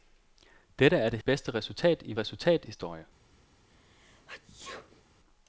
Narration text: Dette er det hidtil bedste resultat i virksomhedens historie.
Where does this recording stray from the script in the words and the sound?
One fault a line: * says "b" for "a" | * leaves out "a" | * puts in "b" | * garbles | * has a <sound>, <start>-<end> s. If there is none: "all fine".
* leaves out "hidtil"
* says "resultat" for "virksomhedens"
* has a sneeze, 3.7-5.0 s